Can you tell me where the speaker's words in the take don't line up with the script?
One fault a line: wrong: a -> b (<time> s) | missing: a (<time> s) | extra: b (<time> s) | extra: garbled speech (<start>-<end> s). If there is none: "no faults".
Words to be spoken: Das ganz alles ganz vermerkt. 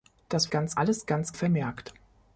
no faults